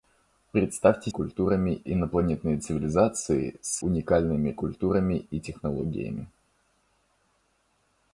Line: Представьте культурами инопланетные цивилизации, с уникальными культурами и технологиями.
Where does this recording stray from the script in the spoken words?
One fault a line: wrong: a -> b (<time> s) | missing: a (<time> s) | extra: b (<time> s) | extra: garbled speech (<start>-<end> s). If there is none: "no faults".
no faults